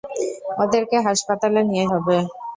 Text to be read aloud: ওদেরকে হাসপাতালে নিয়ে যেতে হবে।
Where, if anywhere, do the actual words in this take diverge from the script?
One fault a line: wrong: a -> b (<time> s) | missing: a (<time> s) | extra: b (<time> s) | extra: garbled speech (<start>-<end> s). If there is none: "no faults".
missing: যেতে (1.9 s)